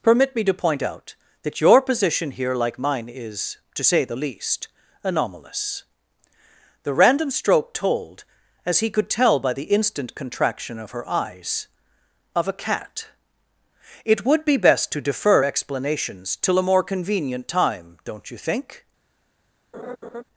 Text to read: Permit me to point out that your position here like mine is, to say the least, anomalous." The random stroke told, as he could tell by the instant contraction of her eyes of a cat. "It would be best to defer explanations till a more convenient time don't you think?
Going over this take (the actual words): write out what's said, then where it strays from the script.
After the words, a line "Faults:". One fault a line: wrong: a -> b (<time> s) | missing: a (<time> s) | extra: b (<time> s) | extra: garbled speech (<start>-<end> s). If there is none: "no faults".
Permit me to point out that your position here like mine is, to say the least, anomalous." The random stroke told, as he could tell by the instant contraction of her eyes of a cat. "It would be best to defer explanations till a more convenient time don't you think?
Faults:
no faults